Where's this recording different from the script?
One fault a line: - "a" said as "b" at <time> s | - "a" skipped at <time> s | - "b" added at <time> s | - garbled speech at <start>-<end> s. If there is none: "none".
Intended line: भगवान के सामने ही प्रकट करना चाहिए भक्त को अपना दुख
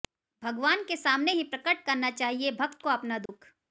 none